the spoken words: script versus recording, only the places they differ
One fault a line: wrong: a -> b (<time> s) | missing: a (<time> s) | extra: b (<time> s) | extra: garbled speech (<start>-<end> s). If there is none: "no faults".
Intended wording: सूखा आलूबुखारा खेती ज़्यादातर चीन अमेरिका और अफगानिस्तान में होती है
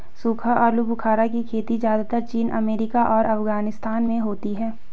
extra: की (1.3 s)